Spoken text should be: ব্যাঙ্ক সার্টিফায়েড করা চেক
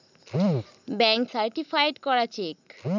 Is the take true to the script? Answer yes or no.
yes